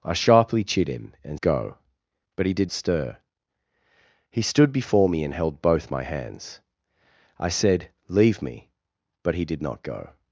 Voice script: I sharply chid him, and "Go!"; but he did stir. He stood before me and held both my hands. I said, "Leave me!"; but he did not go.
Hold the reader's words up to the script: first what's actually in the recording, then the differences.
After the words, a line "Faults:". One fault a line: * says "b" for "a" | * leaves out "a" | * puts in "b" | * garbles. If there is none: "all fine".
I sharply chid him, and "Go!"; but he did stir. He stood before me and held both my hands. I said, "Leave me!"; but he did not go.
Faults:
all fine